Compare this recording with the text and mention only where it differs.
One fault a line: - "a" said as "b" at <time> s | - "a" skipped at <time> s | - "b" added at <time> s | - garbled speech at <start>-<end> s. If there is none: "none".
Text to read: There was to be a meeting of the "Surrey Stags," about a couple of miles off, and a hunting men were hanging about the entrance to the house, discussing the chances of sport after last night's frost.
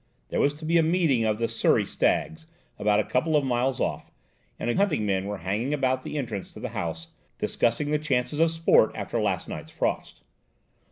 none